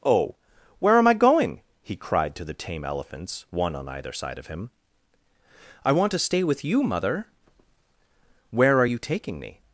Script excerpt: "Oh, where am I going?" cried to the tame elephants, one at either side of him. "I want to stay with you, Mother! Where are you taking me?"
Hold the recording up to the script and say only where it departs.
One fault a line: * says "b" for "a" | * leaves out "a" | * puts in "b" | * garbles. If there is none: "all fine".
* puts in "he"
* says "on" for "at"